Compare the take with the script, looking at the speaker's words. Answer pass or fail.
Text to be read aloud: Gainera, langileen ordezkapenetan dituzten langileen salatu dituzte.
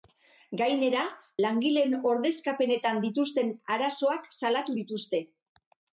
fail